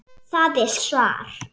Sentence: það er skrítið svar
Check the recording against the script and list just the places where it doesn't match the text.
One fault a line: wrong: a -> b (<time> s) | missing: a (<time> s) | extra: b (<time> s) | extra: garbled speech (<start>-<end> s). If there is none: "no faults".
missing: skrítið (0.7 s)